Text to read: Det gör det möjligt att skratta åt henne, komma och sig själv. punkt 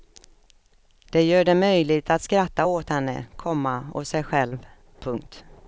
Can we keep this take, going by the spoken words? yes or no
yes